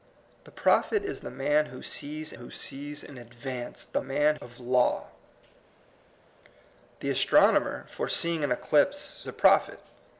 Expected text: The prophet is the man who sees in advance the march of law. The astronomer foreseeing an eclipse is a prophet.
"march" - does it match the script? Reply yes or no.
no